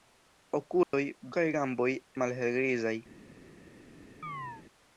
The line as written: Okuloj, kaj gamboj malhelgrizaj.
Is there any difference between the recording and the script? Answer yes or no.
no